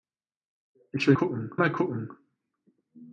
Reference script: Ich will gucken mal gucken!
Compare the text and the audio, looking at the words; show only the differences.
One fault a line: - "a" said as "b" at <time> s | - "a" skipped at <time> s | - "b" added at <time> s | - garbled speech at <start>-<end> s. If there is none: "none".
none